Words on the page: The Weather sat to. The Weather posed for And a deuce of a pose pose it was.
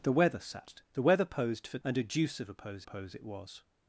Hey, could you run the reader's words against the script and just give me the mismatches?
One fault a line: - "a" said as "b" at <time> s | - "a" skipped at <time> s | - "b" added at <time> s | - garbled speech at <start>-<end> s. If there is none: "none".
none